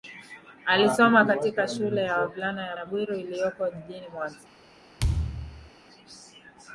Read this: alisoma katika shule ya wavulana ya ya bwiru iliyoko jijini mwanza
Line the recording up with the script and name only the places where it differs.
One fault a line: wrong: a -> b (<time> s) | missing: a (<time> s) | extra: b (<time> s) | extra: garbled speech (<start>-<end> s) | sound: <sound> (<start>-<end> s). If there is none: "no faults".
sound: thud (5.0-5.7 s)